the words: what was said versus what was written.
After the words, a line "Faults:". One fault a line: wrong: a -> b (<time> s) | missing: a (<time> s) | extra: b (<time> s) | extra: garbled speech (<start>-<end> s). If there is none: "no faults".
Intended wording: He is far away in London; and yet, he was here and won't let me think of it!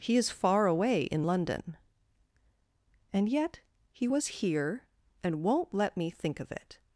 He is far away in London; and yet, he was here and won't let me think of it!
Faults:
no faults